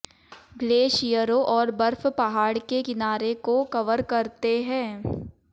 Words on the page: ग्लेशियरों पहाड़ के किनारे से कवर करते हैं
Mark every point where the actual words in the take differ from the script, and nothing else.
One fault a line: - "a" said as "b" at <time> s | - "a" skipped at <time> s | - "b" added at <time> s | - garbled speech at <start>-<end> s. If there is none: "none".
- "और बर्फ" added at 1.5 s
- "से" said as "को" at 3.4 s